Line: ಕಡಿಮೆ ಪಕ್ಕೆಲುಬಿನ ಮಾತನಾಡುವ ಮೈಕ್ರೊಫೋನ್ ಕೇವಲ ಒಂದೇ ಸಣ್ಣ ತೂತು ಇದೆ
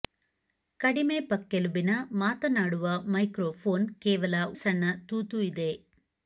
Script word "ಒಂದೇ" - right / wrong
wrong